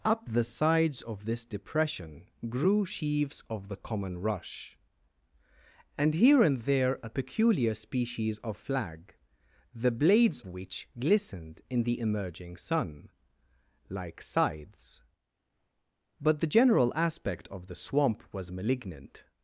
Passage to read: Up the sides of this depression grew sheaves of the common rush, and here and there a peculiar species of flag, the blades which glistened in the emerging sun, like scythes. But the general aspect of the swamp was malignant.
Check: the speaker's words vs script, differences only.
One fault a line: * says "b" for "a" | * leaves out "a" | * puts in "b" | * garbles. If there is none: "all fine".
all fine